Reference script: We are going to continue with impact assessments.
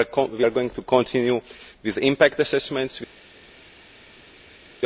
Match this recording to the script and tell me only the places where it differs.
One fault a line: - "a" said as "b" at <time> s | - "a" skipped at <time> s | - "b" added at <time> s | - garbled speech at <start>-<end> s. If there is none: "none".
none